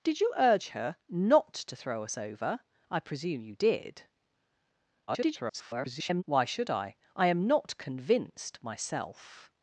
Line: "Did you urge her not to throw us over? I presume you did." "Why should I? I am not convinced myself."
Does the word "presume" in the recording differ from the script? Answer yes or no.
no